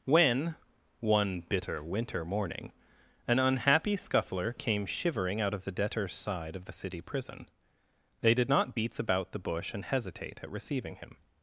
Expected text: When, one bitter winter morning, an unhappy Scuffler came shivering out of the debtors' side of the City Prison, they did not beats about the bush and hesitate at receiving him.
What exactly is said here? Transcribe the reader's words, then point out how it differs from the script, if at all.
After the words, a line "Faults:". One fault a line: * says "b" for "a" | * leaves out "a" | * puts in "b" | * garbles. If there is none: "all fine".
When, one bitter winter morning, an unhappy Scuffler came shivering out of the debtors' side of the City Prison, they did not beats about the bush and hesitate at receiving him.
Faults:
all fine